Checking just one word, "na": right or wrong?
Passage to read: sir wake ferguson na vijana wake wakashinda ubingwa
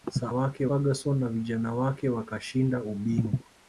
right